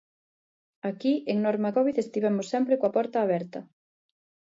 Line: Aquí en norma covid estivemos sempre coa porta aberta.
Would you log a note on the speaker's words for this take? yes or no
no